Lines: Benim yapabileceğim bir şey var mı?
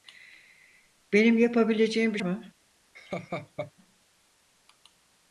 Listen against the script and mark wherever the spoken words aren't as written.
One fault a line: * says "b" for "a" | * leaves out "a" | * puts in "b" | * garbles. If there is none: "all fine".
* leaves out "şey var"